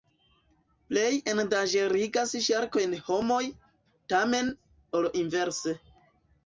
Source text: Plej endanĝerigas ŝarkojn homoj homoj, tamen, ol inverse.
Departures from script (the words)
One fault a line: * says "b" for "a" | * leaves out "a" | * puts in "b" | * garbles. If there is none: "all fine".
* leaves out "homoj"